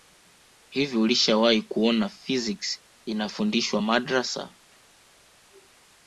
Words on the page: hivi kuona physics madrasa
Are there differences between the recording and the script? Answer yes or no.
yes